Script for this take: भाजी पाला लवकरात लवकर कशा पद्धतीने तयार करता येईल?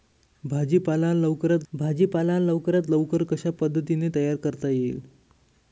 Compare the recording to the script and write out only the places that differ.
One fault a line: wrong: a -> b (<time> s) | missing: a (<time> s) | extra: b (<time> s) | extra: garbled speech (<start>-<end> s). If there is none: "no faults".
extra: भाजी पाला लवकरात (1.7 s)